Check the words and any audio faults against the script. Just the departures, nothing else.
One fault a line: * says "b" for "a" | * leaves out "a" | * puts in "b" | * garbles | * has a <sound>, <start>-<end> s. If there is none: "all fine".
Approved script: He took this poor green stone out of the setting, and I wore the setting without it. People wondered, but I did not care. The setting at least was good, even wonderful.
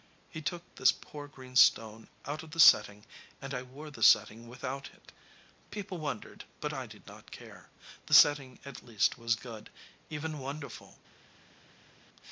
all fine